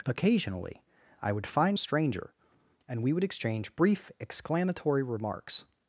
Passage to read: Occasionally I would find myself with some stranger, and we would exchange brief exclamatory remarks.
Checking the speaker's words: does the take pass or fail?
fail